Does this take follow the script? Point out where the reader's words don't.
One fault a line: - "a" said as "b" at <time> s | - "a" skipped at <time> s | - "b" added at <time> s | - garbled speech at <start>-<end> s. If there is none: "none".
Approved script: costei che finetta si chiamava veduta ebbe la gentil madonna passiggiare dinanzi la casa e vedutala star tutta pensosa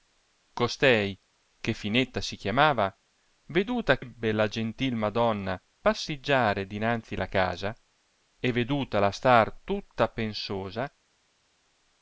none